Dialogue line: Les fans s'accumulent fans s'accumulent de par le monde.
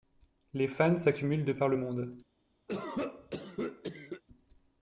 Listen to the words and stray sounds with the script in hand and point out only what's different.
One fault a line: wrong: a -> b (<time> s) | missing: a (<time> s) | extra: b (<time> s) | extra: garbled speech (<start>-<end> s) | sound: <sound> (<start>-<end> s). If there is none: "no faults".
missing: fans s'accumulent (1.4 s)
sound: cough (2.7-4.2 s)